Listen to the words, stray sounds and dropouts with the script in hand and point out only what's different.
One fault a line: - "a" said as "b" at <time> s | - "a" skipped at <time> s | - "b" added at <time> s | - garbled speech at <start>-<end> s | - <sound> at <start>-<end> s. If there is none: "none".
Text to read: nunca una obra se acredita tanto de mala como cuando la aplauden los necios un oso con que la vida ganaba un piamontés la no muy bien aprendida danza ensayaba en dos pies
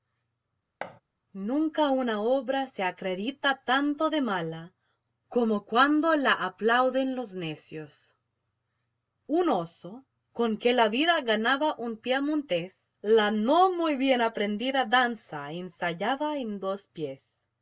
- thud at 0.8-1.0 s